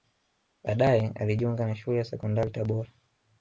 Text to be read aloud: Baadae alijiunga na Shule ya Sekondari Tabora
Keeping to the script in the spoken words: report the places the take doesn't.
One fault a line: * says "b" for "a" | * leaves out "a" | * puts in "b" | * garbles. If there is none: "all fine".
all fine